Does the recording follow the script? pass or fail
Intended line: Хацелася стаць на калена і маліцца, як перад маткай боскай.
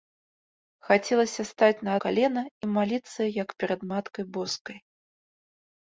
pass